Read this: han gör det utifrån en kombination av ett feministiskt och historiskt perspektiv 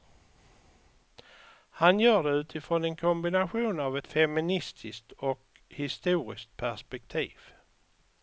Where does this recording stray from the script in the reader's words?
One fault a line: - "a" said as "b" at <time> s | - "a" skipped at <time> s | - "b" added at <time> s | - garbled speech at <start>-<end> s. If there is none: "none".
none